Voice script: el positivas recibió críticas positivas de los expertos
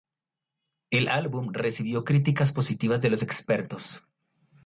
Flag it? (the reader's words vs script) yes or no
yes